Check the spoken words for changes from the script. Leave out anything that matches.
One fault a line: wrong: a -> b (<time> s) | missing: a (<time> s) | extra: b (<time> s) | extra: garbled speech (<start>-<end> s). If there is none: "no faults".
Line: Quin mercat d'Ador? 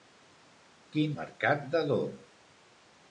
no faults